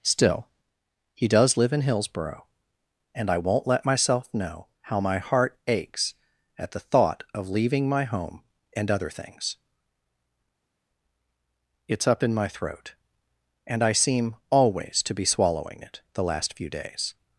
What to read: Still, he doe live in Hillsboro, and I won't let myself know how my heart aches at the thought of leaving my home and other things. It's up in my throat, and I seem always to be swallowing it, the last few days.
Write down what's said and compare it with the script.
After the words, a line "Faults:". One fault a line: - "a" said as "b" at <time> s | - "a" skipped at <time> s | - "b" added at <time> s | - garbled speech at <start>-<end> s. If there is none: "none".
Still, he does live in Hillsboro, and I won't let myself know how my heart aches at the thought of leaving my home and other things. It's up in my throat, and I seem always to be swallowing it, the last few days.
Faults:
- "doe" said as "does" at 1.3 s